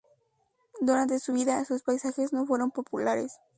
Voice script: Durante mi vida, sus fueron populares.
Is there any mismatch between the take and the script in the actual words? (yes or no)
yes